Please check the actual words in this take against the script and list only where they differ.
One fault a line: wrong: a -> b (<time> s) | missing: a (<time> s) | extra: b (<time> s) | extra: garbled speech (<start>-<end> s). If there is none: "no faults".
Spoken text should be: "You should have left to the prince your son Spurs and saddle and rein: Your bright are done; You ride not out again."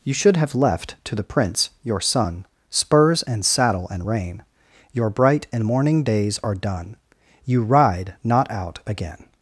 extra: and morning days (5.5 s)